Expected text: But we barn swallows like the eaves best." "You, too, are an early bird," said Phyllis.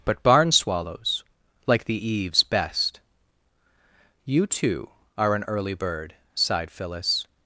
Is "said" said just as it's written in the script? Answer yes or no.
no